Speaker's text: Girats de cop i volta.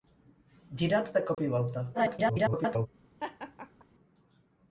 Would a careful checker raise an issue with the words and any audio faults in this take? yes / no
yes